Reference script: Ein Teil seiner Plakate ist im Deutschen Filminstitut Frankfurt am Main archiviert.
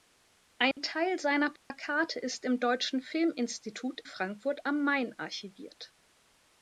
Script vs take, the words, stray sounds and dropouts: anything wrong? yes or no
yes